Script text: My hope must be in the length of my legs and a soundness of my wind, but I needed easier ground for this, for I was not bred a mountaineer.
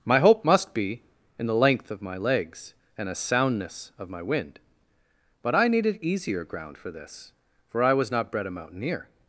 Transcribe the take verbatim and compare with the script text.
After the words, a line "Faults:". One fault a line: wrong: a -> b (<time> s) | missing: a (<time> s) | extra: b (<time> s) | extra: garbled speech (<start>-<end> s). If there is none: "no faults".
My hope must be in the length of my legs and a soundness of my wind, but I needed easier ground for this, for I was not bred a mountaineer.
Faults:
no faults